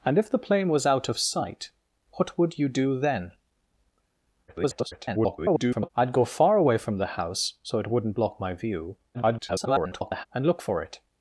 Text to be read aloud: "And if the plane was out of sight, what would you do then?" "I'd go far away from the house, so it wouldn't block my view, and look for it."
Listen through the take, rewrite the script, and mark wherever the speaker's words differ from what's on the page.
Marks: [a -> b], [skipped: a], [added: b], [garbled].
"And if the plane was out of sight, what would you do then?" [garbled] "I'd go far away from the house, so it wouldn't block my view, [garbled] and look for it."